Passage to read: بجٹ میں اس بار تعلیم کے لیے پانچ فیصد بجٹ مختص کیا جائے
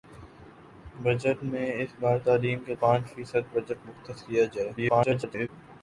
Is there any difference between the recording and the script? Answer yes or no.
yes